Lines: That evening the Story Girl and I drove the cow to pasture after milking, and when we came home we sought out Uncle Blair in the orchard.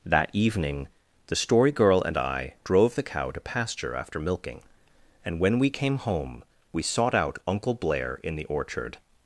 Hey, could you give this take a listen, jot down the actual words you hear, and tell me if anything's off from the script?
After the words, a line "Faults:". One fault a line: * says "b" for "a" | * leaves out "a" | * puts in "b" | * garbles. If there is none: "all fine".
That evening the Story Girl and I drove the cow to pasture after milking, and when we came home we sought out Uncle Blair in the orchard.
Faults:
all fine